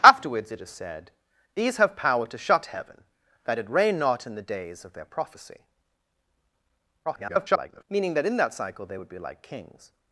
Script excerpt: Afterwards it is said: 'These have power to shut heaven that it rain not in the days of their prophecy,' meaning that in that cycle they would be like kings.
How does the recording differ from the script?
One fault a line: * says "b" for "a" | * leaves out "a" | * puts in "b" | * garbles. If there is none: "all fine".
* garbles